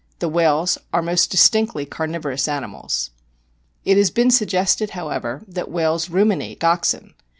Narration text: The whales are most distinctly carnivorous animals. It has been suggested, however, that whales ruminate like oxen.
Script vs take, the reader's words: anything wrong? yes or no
yes